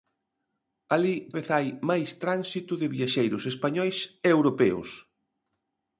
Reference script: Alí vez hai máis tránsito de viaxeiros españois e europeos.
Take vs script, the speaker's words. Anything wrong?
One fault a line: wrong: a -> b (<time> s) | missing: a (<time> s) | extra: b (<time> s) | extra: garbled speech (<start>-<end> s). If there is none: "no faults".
no faults